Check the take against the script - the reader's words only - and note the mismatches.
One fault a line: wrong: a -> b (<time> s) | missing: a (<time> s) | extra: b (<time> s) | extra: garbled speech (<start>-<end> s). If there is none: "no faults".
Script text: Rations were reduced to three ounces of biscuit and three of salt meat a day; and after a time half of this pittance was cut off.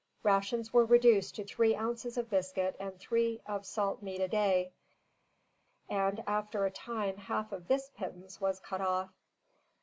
no faults